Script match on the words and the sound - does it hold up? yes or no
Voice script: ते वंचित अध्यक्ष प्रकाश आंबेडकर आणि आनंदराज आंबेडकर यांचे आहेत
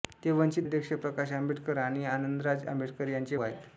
yes